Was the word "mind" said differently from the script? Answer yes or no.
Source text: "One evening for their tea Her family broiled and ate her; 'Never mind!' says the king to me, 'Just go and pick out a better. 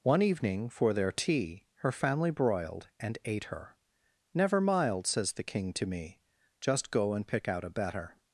yes